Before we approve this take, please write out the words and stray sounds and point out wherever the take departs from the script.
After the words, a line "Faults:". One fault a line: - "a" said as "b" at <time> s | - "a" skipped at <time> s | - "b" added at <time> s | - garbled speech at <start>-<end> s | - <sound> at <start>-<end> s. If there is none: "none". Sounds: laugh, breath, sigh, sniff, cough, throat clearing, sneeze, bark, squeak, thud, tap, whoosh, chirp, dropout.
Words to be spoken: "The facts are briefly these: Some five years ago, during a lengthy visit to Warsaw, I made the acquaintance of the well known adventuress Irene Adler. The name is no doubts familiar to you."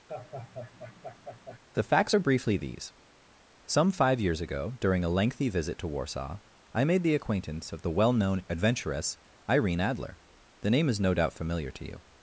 "The facts are briefly these: Some five years ago, during a lengthy visit to Warsaw, I made the acquaintance of the well known adventuress Irene Adler. The name is no doubt familiar to you."
Faults:
- laugh at 0.1-1.6 s
- "doubts" said as "doubt" at 11.2 s